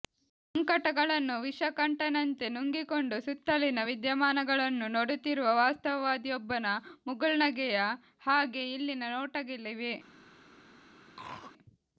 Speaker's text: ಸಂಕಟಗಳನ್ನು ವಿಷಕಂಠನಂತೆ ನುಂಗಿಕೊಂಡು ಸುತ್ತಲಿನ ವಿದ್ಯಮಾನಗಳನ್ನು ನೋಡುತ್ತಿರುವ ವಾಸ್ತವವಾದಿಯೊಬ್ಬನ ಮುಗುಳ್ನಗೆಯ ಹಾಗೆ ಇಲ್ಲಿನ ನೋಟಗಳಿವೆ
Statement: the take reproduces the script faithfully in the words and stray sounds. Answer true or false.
false